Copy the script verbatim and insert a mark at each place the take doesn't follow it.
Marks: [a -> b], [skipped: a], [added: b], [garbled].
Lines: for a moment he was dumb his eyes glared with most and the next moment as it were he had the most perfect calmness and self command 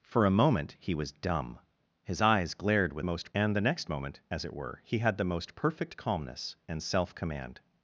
for a moment he was dumb his eyes glared with most and the next moment as it were he had the most perfect calmness and self command